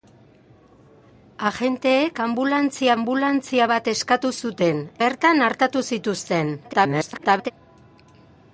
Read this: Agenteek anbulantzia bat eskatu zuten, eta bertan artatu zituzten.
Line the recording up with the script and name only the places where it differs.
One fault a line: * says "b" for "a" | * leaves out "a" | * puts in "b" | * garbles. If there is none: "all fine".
* puts in "anbulantzia"
* leaves out "eta"
* garbles